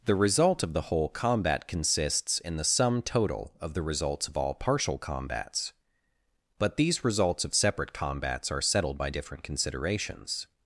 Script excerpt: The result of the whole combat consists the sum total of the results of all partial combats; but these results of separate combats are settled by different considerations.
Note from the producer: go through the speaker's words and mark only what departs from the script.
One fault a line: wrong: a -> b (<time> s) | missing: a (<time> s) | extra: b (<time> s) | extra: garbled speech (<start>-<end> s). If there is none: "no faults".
extra: in (2.4 s)